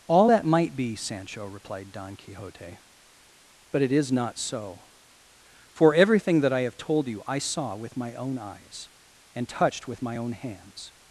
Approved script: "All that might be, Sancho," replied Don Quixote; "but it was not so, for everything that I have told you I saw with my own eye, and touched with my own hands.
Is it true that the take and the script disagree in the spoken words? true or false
true